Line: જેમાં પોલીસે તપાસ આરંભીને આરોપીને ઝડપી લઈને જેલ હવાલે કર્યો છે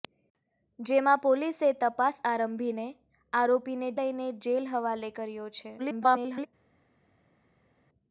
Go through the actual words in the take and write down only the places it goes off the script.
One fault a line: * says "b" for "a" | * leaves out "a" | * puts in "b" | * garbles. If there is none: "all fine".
* leaves out "ઝડપી"
* garbles